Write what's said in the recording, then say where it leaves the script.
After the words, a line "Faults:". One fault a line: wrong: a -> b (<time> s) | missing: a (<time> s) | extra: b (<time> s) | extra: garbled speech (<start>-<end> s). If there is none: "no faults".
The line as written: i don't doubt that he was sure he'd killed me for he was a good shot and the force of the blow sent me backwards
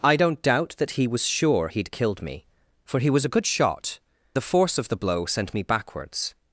i don't doubt that he was sure he'd killed me for he was a good shot the force of the blow sent me backwards
Faults:
missing: and (4.0 s)